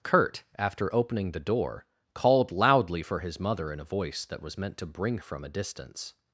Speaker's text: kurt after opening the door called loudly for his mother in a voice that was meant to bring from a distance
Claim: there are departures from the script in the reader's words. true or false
false